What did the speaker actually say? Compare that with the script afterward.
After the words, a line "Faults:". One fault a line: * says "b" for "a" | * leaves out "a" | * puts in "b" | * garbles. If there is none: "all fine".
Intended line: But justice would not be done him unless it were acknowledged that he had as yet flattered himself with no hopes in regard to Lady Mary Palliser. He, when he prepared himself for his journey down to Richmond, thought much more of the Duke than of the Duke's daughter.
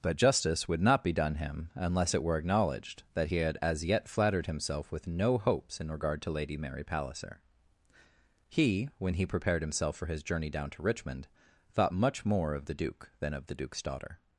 But justice would not be done him unless it were acknowledged that he had as yet flattered himself with no hopes in regard to Lady Mary Palliser. He, when he prepared himself for his journey down to Richmond, thought much more of the Duke than of the Duke's daughter.
Faults:
all fine